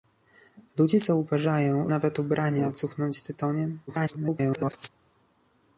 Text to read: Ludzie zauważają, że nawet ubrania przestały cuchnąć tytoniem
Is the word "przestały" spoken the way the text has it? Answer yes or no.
no